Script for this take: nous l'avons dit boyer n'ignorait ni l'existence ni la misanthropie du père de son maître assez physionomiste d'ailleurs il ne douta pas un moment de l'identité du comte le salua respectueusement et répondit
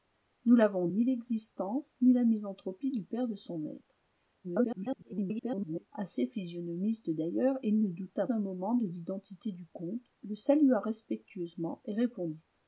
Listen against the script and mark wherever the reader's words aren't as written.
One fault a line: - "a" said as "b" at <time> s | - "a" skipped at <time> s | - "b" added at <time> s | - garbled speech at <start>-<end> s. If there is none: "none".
- "dit boyer n'ignorait" skipped at 0.9 s
- garbled speech at 4.4-5.9 s
- "pas" skipped at 8.3 s